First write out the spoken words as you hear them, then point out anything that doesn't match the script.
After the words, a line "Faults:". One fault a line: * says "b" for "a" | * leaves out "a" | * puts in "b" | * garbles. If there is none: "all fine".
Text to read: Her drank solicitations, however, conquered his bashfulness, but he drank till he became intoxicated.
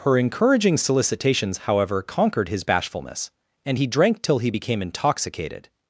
Her encouraging solicitations, however, conquered his bashfulness, and he drank till he became intoxicated.
Faults:
* says "encouraging" for "drank"
* says "and" for "but"